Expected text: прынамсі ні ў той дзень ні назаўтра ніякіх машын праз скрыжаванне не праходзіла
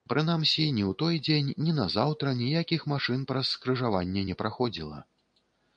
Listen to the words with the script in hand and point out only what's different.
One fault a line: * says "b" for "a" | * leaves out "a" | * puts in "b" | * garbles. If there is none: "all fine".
all fine